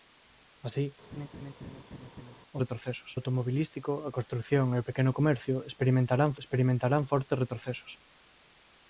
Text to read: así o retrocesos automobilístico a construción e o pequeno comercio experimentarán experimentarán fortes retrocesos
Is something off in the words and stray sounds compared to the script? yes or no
yes